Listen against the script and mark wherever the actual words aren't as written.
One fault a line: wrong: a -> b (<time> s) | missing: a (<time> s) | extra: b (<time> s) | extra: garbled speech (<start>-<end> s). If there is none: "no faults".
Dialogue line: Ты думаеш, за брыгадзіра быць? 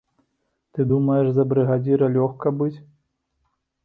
extra: лёгка (2.1 s)